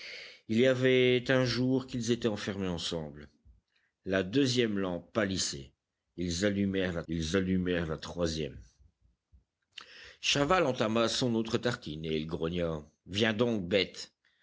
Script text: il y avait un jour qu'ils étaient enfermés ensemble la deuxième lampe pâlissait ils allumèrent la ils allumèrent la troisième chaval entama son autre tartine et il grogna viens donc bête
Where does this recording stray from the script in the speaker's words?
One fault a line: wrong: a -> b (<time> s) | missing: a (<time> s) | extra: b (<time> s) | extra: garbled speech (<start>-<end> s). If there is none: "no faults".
no faults